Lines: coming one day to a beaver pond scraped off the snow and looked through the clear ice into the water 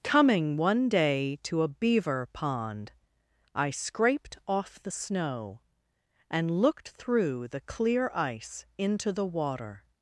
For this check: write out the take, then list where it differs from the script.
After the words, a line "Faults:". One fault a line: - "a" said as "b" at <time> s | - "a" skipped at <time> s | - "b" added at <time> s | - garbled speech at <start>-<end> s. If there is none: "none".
coming one day to a beaver pond i scraped off the snow and looked through the clear ice into the water
Faults:
- "i" added at 3.5 s